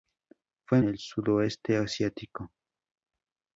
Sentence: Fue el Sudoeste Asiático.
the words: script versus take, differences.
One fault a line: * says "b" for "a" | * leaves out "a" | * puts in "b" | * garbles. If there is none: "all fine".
all fine